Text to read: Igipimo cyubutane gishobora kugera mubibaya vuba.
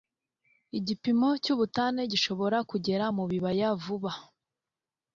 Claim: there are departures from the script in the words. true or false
false